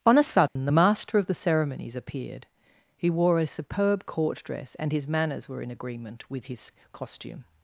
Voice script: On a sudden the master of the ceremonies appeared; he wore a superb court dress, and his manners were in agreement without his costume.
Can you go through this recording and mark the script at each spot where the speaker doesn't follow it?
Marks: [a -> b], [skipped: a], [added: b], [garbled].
On a sudden the master of the ceremonies appeared; he wore a superb court dress, and his manners were in agreement [without -> with] his costume.